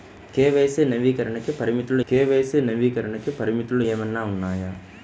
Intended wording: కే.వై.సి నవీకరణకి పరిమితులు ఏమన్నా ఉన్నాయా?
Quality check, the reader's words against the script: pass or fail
fail